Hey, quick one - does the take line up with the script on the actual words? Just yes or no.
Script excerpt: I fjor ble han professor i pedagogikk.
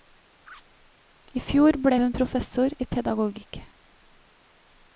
no